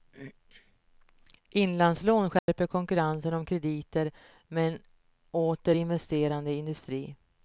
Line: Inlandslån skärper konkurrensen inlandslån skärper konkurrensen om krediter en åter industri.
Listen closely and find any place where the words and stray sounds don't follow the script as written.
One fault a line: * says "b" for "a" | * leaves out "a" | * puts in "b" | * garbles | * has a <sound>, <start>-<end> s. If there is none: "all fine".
* has a dropout, 2.4-2.5 s
* leaves out "inlandslån skärper konkurrensen"
* puts in "med"
* puts in "investerande"